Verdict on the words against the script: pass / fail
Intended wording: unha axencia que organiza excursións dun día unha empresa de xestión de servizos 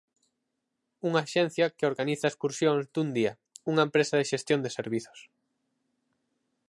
pass